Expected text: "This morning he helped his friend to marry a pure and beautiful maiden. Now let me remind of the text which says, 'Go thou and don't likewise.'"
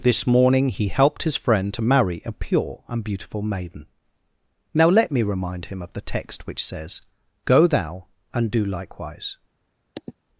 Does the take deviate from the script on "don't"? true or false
true